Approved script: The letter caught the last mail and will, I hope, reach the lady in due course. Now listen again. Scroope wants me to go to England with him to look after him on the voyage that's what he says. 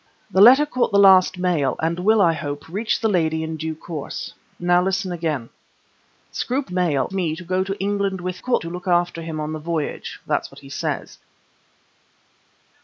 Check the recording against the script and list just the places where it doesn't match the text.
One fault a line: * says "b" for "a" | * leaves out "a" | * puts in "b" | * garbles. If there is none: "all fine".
* says "mail" for "wants"
* says "caught" for "him"